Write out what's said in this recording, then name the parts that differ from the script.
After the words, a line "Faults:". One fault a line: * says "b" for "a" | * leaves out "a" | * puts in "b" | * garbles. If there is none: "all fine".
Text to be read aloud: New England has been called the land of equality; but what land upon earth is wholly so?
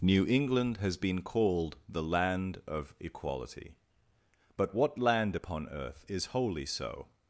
New England has been called the land of equality; but what land upon earth is wholly so?
Faults:
all fine